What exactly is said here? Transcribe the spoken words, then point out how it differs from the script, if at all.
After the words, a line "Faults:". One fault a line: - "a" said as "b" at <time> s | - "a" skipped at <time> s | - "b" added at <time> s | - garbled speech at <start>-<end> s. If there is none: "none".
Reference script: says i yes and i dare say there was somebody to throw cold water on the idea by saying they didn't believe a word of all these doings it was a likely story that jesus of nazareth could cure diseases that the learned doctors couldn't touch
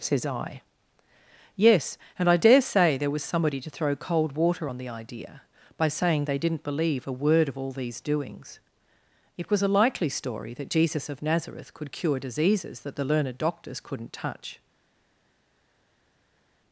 says i yes and i dare say there was somebody to throw cold water on the idea by saying they didn't believe a word of all these doings it was a likely story that jesus of nazareth could cure diseases that the learned doctors couldn't touch
Faults:
none